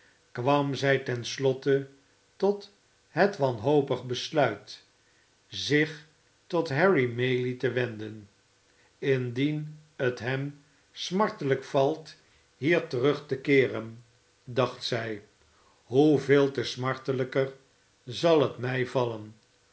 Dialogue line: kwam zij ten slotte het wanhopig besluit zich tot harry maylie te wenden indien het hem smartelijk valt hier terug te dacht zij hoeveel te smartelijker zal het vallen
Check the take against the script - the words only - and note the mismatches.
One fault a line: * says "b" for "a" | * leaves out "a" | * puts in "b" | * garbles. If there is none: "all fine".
* puts in "tot"
* puts in "keeren"
* puts in "mij"